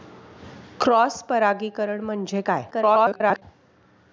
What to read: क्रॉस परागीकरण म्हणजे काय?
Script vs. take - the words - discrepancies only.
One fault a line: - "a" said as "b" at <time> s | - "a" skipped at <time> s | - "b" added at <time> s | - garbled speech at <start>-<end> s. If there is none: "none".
- garbled speech at 2.7-3.4 s